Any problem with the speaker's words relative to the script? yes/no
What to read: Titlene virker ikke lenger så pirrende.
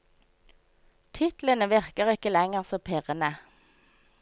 no